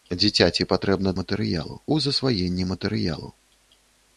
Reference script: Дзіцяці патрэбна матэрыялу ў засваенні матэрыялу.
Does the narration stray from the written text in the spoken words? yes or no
no